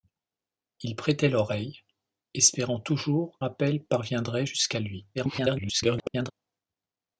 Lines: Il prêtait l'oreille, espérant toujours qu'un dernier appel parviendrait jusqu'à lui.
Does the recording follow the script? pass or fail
fail